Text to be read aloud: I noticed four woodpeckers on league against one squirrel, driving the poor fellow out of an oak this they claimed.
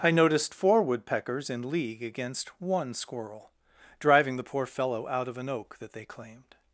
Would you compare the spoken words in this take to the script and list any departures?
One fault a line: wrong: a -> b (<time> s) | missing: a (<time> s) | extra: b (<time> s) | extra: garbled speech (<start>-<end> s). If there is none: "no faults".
wrong: on -> in (1.5 s)
wrong: this -> that (5.8 s)